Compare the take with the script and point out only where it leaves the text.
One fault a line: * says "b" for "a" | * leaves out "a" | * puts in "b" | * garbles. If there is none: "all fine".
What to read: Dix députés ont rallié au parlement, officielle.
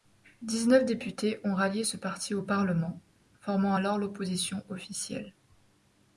* puts in "neuf"
* puts in "ce parti"
* puts in "formant alors l'opposition"